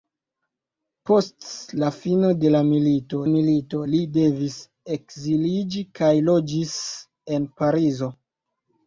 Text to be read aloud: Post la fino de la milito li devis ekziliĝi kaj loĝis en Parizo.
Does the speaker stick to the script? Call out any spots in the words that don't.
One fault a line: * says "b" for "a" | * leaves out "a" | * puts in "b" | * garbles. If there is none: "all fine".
* puts in "milito"